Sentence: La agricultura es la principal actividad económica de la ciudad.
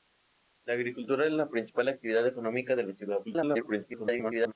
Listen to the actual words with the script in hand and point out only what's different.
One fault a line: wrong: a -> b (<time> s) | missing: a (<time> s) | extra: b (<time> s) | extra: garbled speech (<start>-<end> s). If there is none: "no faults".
extra: garbled speech (3.2-4.5 s)